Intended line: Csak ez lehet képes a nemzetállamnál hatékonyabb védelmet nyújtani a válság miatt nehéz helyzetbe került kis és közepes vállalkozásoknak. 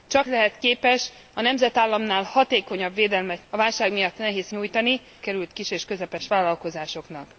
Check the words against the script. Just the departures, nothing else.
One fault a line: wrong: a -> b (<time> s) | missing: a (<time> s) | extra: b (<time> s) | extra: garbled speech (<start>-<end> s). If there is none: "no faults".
missing: ez (0.3 s)
missing: nyújtani (3.4 s)
wrong: helyzetbe -> nyújtani (4.5 s)